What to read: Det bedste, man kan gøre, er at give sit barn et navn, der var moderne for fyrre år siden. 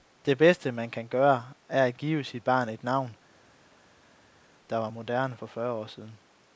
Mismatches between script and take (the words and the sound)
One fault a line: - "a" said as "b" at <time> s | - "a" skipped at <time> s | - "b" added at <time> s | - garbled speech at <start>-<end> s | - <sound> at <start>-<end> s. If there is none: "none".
none